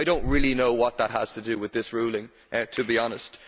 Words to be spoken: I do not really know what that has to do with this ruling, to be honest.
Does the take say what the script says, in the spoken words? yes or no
yes